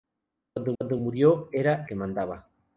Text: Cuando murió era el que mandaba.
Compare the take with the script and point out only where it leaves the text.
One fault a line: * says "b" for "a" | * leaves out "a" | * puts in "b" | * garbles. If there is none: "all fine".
* puts in "cuando"
* leaves out "el"